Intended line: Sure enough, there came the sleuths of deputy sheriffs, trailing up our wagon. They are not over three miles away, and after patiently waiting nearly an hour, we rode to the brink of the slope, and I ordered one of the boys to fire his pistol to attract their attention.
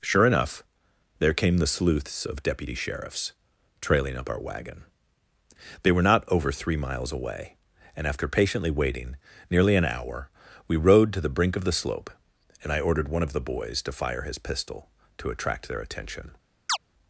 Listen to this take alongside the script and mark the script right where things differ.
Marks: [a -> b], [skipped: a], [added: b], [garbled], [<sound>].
Sure enough, there came the sleuths of deputy sheriffs, trailing up our wagon. They [are -> were] not over three miles away, and after patiently waiting nearly an hour, we rode to the brink of the slope, and I ordered one of the boys to fire his pistol to attract their attention. [chirp]